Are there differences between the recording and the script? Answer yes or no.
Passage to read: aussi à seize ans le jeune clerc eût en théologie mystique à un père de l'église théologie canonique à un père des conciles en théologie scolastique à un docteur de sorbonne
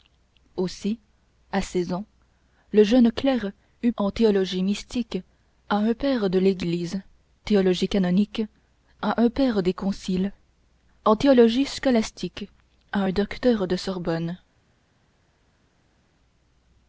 no